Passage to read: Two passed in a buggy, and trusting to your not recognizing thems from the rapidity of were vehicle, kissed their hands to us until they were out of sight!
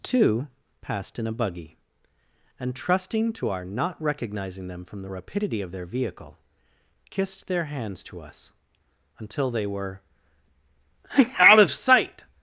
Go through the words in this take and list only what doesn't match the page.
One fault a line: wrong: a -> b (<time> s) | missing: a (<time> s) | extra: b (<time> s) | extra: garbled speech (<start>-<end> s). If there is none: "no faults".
wrong: your -> our (3.5 s)
wrong: thems -> them (4.7 s)
wrong: were -> their (5.7 s)